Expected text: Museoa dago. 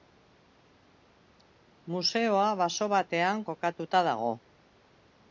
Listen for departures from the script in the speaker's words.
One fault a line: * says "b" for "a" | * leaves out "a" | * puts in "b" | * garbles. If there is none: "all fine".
* puts in "baso batean kokatuta"